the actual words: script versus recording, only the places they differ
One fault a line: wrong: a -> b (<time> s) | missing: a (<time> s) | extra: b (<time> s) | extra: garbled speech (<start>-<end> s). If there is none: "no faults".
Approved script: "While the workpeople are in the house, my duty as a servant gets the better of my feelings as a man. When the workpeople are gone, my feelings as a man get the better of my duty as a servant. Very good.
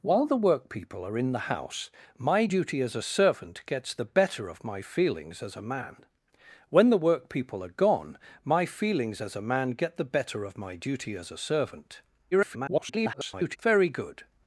extra: garbled speech (12.3-13.6 s)